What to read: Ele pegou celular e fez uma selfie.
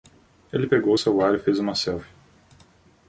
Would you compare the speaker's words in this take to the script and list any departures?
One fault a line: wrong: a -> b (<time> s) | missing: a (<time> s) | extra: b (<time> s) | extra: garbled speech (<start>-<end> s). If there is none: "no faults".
no faults